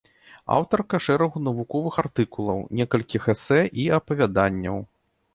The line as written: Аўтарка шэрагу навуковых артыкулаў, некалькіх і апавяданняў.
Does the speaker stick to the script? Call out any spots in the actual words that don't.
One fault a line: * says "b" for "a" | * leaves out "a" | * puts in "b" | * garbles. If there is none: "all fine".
* puts in "эсэ"